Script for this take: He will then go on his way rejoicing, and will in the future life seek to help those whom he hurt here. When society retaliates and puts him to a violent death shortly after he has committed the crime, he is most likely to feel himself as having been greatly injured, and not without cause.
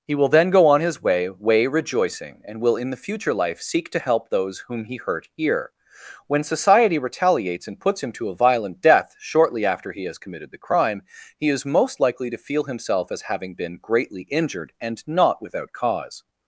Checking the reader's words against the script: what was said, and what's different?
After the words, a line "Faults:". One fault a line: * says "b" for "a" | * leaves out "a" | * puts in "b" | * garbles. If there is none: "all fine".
He will then go on his way way rejoicing, and will in the future life seek to help those whom he hurt here. When society retaliates and puts him to a violent death shortly after he has committed the crime, he is most likely to feel himself as having been greatly injured, and not without cause.
Faults:
* puts in "way"